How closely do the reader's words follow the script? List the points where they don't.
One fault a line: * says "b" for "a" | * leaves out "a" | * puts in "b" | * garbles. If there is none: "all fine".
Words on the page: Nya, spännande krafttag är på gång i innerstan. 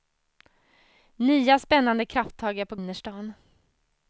* leaves out "gång i"